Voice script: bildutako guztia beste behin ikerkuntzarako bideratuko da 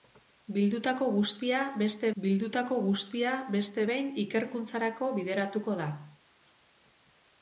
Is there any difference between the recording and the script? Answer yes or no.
yes